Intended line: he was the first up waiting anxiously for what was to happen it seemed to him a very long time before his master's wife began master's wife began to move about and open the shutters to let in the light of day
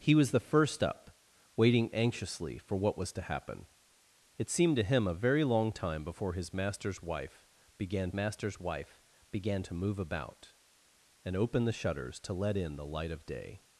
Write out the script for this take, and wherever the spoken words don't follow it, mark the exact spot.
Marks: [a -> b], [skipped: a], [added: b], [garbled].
he was the first up waiting anxiously for what was to happen it seemed to him a very long time before his master's wife began master's wife began to move about and open the shutters to let in the light of day